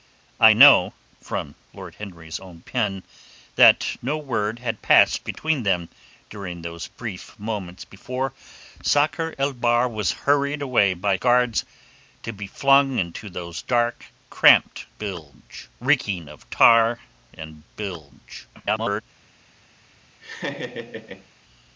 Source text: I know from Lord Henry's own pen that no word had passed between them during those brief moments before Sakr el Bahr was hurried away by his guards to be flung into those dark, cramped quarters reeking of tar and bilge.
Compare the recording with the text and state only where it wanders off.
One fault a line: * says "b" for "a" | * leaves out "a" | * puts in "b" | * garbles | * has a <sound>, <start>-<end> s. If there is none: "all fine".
* leaves out "his"
* says "bilge" for "quarters"
* garbles
* has a laugh, 20.2-21.3 s